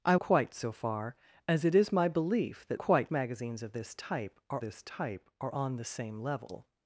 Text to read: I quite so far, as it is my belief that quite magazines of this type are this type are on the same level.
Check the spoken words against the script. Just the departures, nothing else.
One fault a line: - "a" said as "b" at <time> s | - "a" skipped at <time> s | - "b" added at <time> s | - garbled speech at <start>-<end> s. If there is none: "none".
none